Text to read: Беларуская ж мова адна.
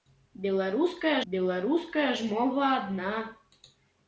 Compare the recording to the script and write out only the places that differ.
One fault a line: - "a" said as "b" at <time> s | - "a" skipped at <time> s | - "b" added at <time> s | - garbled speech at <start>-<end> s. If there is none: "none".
- "беларуская" added at 1.3 s